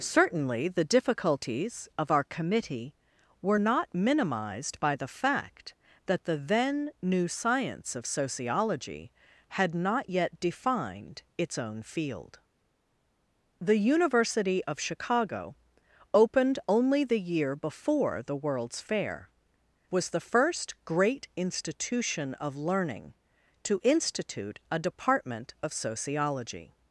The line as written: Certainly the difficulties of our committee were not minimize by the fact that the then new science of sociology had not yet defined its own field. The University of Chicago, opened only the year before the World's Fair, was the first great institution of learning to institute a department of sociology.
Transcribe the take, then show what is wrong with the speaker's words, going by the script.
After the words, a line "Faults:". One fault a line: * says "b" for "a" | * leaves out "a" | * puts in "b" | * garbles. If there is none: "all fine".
Certainly the difficulties of our committee were not minimized by the fact that the then new science of sociology had not yet defined its own field. The University of Chicago, opened only the year before the World's Fair, was the first great institution of learning to institute a department of sociology.
Faults:
* says "minimized" for "minimize"